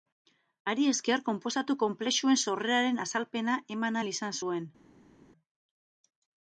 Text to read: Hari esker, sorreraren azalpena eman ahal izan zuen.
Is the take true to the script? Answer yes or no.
no